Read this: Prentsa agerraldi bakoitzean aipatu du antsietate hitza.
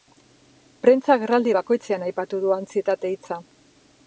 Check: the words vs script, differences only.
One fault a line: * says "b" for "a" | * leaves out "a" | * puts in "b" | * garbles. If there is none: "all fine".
all fine